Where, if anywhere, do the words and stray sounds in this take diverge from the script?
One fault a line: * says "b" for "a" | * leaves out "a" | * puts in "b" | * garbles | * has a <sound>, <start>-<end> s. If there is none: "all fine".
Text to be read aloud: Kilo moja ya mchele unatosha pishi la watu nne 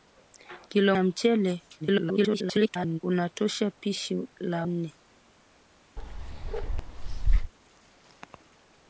* leaves out "moja"
* garbles
* leaves out "watu"
* has a bark, 6.0-7.5 s